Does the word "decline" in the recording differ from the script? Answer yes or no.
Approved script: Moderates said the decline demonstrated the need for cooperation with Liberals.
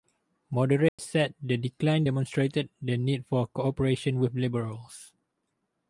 no